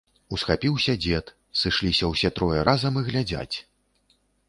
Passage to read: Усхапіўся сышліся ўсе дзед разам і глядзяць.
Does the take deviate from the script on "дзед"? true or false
true